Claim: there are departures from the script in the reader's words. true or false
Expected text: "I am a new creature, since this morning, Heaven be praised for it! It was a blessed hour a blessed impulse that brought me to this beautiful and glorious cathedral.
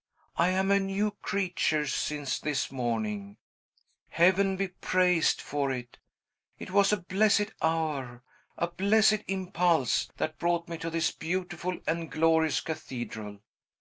false